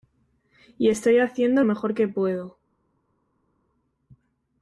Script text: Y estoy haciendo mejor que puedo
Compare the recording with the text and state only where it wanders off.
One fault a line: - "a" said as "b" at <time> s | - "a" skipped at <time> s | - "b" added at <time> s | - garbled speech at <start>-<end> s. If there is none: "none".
none